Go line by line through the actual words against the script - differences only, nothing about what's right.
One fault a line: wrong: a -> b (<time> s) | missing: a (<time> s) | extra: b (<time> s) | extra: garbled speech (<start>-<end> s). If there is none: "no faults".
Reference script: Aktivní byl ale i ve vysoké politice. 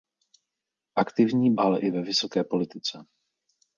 missing: byl (1.6 s)